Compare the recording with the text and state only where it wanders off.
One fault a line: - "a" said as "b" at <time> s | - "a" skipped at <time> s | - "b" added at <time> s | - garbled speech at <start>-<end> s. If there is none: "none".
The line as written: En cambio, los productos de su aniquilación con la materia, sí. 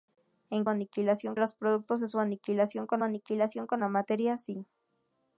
- "cambio" said as "aniquilación" at 0.7 s
- "aniquilación con" added at 3.0 s